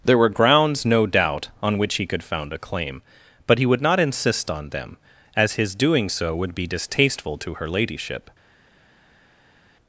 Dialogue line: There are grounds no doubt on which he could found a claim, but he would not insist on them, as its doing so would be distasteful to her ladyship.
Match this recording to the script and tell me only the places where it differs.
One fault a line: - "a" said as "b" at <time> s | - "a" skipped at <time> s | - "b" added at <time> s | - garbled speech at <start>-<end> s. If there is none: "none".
- "are" said as "were" at 0.2 s
- "its" said as "his" at 5.5 s